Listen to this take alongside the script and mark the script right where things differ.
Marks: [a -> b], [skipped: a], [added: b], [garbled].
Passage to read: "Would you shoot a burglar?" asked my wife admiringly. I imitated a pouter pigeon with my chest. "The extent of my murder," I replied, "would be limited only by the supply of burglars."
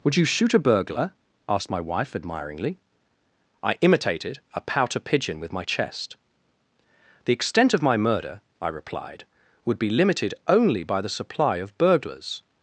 "Would you shoot a burglar?" asked my wife admiringly. I imitated a pouter pigeon with my chest. "The extent of my murder," I replied, "would be limited only by the supply of burglars."